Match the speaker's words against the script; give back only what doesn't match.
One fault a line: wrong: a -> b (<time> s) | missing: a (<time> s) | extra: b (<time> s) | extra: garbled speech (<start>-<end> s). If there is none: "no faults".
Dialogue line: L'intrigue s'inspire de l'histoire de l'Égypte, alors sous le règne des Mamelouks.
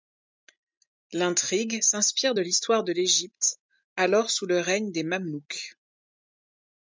no faults